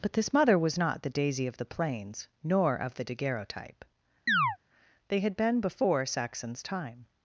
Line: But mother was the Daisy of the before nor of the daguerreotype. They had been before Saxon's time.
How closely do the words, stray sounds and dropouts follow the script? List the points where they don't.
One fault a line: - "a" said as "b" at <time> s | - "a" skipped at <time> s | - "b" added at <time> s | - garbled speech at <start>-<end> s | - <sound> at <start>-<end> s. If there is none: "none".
- "this" added at 0.1 s
- "not" added at 0.8 s
- "before" said as "plains" at 1.7 s
- chirp at 4.3-4.6 s